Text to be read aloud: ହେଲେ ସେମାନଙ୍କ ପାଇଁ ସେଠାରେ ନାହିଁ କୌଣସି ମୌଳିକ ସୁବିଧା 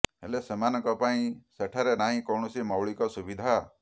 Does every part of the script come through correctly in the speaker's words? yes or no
yes